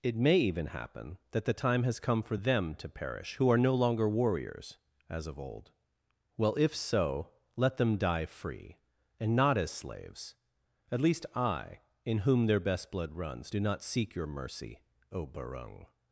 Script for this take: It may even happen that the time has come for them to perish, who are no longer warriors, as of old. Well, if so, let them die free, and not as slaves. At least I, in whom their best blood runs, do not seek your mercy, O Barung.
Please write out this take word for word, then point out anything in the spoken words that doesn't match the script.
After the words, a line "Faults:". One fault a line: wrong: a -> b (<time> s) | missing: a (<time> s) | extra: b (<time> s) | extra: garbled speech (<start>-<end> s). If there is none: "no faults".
It may even happen that the time has come for them to perish, who are no longer warriors, as of old. Well, if so, let them die free, and not as slaves. At least I, in whom their best blood runs, do not seek your mercy, O Barung.
Faults:
no faults